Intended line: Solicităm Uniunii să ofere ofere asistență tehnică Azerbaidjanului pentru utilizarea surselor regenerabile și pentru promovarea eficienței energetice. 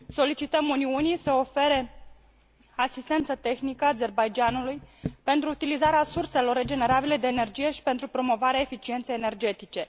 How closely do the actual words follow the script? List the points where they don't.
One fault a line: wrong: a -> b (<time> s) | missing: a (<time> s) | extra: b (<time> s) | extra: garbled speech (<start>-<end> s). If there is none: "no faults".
missing: ofere (1.9 s)
extra: de energie (7.2 s)